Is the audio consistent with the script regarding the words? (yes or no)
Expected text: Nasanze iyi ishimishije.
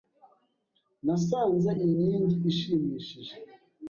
no